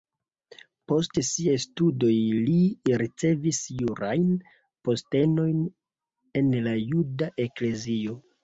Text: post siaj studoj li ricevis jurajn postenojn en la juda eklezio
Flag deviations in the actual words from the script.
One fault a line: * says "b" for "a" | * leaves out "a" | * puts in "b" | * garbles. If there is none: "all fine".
all fine